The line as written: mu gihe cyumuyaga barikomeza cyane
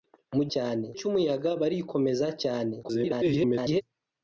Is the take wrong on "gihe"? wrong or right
wrong